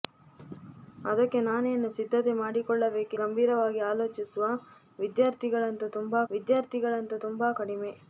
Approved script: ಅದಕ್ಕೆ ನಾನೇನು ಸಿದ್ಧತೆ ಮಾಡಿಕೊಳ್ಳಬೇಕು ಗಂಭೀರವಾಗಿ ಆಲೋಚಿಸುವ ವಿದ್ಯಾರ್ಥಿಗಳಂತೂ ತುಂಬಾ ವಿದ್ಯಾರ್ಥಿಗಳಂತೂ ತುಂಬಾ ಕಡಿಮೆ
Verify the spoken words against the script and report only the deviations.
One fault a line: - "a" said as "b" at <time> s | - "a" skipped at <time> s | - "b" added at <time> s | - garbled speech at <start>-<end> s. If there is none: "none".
none